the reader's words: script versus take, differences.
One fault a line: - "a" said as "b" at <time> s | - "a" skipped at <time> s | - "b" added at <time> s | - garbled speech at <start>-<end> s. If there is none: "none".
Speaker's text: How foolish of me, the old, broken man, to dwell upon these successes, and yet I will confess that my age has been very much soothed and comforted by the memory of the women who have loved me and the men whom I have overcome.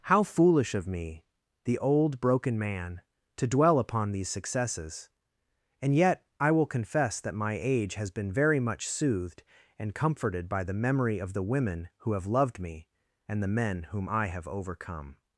none